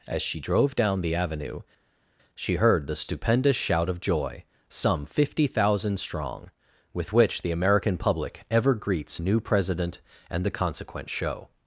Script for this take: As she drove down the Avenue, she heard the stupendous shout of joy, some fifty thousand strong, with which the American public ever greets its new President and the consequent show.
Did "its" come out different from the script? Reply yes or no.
yes